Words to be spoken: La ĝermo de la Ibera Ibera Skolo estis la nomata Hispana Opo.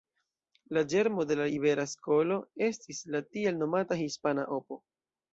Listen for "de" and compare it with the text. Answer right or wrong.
right